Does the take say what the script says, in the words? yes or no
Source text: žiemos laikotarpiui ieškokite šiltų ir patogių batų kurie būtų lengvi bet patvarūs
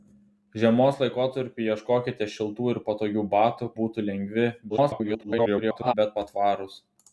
no